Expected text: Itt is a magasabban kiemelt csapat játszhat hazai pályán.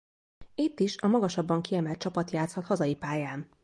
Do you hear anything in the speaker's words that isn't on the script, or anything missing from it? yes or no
no